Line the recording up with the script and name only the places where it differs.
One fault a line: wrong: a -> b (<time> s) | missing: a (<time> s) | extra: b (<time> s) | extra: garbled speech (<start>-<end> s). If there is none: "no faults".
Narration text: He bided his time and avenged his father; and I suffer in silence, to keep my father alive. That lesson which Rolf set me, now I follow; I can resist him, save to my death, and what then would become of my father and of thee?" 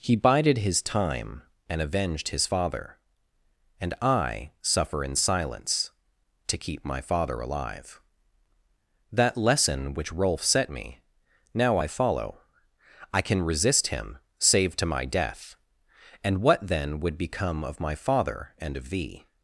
no faults